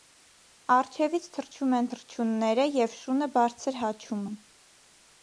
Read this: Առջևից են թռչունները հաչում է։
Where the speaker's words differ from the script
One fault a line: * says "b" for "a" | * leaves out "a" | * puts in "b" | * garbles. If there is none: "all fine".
* puts in "թռչում"
* puts in "և շունը բարձր"